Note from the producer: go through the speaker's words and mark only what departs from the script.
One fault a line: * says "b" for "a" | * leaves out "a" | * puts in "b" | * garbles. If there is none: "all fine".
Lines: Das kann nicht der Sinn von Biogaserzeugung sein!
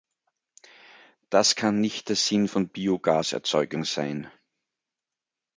all fine